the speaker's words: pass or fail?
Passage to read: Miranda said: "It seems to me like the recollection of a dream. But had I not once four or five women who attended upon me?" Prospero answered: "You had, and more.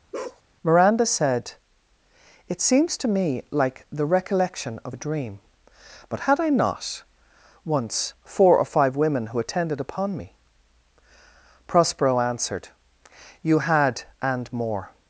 pass